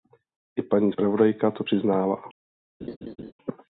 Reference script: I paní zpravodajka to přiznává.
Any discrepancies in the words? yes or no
no